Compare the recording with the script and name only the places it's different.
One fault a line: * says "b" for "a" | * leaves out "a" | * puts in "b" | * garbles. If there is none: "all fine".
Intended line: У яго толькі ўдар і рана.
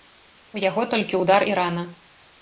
all fine